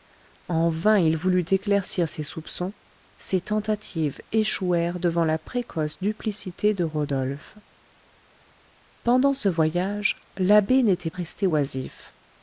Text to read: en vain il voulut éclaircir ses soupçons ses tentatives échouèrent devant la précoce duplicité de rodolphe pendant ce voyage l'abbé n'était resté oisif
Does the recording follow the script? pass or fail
pass